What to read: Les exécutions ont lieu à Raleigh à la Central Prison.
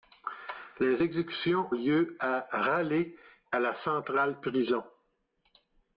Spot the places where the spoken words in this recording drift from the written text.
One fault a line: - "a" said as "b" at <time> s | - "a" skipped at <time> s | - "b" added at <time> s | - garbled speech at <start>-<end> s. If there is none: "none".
- "ont" skipped at 1.8 s